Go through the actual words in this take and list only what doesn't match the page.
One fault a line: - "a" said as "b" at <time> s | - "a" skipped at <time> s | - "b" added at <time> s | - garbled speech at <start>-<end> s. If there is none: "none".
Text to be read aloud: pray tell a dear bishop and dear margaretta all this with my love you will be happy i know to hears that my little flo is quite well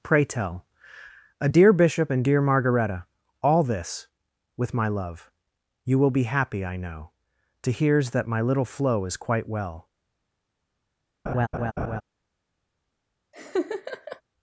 none